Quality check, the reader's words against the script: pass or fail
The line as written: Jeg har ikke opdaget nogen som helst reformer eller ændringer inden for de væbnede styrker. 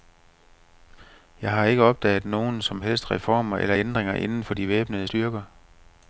pass